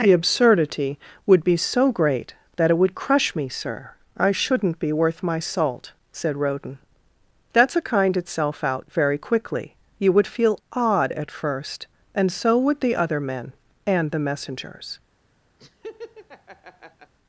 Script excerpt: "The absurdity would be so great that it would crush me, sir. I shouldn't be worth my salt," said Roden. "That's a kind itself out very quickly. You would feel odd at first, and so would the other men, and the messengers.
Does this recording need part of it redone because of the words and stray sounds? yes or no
yes